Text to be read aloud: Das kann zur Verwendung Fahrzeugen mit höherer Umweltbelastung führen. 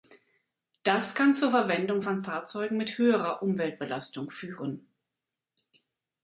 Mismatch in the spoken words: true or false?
true